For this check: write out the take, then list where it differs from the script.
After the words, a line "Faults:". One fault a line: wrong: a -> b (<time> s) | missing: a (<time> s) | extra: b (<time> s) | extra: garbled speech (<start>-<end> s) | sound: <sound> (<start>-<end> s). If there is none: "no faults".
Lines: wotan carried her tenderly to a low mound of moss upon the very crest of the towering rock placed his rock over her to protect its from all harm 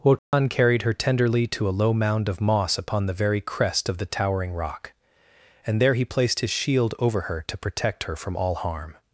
wotan carried her tenderly to a low mound of moss upon the very crest of the towering rock and there he placed his shield over her to protect her from all harm
Faults:
sound: dropout (0.2-0.3 s)
extra: and there he (5.7 s)
wrong: rock -> shield (6.5 s)
wrong: its -> her (8.0 s)